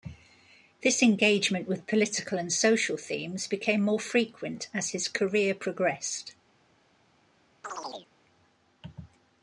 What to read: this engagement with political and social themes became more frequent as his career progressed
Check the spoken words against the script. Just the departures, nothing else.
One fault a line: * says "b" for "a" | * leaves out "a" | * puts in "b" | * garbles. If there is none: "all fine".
all fine